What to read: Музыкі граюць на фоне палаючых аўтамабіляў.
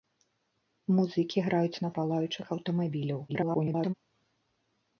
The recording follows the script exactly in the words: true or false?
false